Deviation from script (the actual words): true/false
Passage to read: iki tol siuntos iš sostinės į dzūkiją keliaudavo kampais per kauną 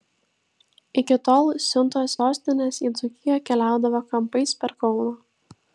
true